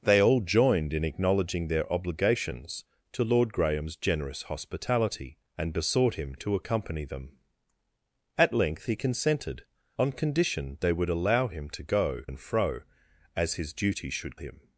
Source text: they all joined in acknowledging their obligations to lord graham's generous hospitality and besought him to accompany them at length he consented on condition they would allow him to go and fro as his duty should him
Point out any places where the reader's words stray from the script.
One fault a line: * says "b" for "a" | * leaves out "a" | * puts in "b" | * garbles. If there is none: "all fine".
all fine